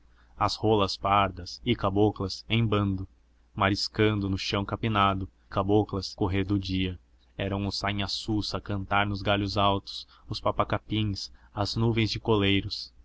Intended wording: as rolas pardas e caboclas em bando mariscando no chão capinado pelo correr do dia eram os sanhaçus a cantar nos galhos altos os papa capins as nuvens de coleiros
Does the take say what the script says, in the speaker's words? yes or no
no